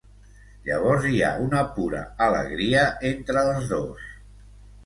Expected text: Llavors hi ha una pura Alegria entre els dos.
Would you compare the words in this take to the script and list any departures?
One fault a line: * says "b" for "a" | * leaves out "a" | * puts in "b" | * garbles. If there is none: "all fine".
all fine